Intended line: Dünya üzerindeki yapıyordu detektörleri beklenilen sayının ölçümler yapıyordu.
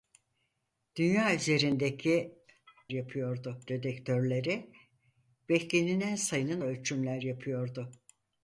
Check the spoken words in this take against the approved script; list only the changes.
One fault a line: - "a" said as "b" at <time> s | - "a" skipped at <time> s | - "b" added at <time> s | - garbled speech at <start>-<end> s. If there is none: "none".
none